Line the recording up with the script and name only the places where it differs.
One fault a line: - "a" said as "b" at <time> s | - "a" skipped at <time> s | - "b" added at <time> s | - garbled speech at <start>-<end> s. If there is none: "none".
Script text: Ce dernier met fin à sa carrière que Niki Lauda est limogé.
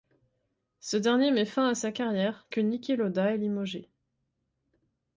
none